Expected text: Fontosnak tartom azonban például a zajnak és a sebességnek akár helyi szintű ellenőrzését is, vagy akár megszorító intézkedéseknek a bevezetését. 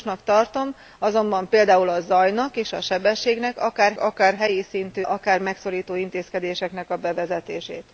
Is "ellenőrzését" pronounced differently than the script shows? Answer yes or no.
yes